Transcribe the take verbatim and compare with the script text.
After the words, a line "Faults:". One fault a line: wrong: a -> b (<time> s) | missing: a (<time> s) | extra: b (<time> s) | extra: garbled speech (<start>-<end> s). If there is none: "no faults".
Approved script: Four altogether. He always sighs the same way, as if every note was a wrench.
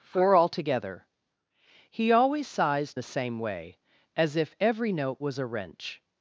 Four altogether. He always sighs the same way, as if every note was a wrench.
Faults:
no faults